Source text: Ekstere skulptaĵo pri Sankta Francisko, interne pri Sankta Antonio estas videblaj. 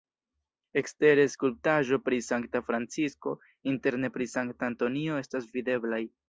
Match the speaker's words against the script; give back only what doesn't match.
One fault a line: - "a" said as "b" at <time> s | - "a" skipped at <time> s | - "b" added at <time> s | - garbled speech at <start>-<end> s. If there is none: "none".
none